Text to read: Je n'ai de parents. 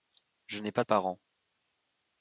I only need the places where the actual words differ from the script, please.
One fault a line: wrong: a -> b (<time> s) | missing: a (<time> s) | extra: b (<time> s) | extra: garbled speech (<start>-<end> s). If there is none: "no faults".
extra: pas (0.7 s)